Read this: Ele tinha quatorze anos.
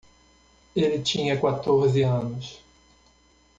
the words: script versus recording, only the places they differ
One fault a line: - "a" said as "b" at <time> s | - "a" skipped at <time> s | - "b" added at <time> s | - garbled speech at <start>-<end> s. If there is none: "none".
none